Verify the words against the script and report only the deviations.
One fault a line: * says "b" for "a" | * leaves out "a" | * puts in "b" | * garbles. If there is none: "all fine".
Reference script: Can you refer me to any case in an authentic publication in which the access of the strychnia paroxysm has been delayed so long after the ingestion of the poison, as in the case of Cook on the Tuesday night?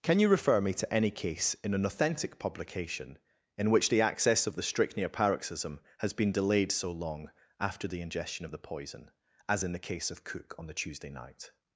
all fine